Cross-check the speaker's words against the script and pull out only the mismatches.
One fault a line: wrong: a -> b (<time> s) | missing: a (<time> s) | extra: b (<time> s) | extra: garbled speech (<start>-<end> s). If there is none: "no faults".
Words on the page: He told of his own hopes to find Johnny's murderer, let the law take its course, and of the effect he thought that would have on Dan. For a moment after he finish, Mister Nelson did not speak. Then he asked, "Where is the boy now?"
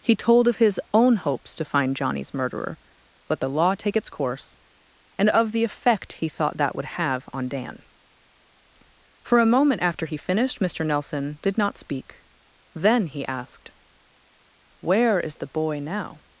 wrong: finish -> finished (10.2 s)